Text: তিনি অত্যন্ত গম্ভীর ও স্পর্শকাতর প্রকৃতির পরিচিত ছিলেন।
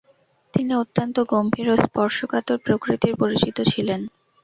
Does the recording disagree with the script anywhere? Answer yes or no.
no